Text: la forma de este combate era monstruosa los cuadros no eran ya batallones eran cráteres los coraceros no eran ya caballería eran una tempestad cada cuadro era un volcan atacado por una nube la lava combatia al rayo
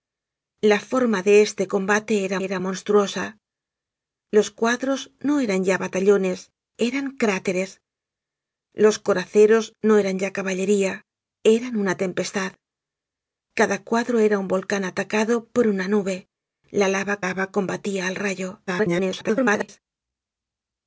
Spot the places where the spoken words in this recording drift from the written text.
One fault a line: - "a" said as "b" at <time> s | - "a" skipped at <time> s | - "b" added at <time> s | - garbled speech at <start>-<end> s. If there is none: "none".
- "era" added at 2.5 s
- "lava" added at 17.2 s
- garbled speech at 18.7-19.8 s